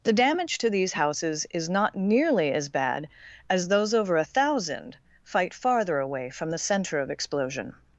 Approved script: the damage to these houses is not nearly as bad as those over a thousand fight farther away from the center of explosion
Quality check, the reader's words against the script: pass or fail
pass